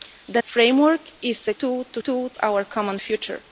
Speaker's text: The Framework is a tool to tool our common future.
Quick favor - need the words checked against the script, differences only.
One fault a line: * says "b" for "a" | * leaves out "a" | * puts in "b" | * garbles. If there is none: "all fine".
all fine